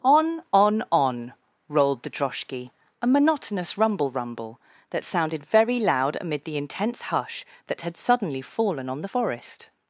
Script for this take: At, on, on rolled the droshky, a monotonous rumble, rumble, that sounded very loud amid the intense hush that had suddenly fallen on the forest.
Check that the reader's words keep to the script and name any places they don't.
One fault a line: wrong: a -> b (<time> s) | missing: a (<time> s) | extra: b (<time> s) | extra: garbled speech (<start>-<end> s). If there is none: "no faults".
wrong: At -> On (0.0 s)